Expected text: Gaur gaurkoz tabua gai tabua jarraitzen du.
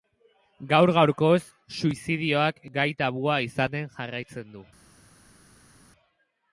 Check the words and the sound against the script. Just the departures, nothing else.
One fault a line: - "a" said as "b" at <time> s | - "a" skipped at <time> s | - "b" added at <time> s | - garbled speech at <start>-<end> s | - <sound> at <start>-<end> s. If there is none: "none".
- "tabua" said as "suizidioak" at 1.8 s
- "izaten" added at 3.5 s